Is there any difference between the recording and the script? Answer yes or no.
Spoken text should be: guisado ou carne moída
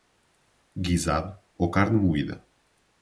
no